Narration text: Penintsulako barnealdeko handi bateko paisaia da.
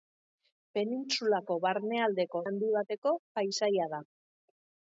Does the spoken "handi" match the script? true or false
true